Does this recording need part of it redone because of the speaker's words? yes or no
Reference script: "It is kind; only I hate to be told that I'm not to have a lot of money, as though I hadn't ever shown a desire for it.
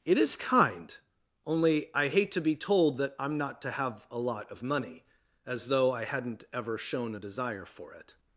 no